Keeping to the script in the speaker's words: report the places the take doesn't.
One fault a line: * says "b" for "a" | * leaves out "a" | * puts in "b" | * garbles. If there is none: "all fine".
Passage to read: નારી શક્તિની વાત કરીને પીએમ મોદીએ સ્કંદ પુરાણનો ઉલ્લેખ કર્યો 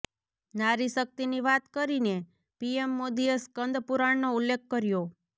all fine